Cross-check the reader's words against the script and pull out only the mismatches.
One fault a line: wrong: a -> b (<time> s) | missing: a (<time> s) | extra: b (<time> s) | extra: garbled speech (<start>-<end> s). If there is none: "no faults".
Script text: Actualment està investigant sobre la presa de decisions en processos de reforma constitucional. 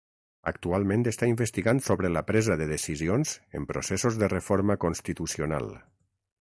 no faults